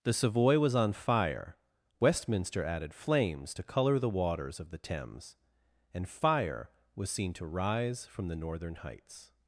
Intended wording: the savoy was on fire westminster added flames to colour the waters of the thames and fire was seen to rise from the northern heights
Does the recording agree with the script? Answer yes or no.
yes